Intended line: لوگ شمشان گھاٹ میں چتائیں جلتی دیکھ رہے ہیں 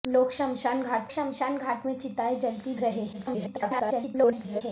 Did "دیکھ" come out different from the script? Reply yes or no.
yes